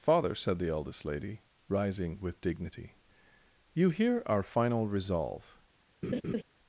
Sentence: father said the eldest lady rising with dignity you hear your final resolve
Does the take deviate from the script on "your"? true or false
true